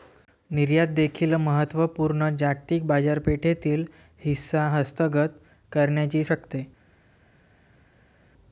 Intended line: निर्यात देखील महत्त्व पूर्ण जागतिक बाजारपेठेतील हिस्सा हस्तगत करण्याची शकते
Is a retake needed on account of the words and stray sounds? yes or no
no